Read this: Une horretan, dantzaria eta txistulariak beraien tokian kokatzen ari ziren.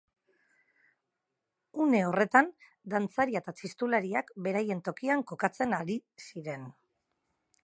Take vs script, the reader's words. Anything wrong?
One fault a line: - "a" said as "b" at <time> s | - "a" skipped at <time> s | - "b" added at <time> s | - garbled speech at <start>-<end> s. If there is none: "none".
none